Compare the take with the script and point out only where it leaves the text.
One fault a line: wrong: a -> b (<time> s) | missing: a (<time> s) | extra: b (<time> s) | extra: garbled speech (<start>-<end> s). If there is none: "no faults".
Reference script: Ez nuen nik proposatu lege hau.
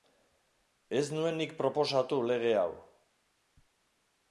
no faults